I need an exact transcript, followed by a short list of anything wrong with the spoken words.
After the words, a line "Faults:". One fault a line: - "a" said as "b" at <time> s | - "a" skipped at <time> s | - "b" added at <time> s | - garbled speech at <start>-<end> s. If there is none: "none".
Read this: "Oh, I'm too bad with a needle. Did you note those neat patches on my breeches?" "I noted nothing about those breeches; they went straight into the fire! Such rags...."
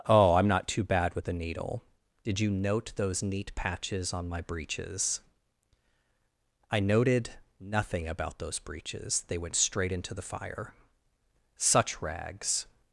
"Oh, I'm not too bad with a needle. Did you note those neat patches on my breeches?" "I noted nothing about those breeches; they went straight into the fire! Such rags...."
Faults:
- "not" added at 0.5 s